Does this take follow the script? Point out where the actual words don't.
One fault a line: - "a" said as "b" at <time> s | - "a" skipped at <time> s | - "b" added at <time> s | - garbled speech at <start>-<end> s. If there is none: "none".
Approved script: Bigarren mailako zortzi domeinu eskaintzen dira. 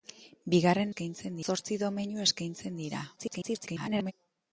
- "mailako" said as "eskaintzen" at 0.9 s
- garbled speech at 3.2-4.1 s